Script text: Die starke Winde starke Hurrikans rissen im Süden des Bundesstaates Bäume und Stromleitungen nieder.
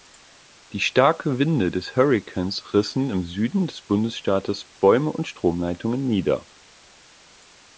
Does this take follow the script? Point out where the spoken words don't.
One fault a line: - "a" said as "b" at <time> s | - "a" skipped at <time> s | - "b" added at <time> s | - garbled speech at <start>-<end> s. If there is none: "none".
- "starke" said as "des" at 1.7 s